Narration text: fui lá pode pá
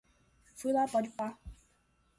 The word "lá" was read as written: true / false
true